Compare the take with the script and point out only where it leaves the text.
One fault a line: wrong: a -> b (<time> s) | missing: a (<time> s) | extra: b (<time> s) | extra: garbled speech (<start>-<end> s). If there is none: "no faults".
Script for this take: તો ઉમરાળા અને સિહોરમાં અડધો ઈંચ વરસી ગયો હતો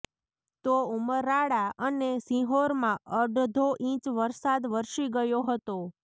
extra: વરસાદ (4.2 s)